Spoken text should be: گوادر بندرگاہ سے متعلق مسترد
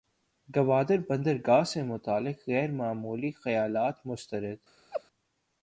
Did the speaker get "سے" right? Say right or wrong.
right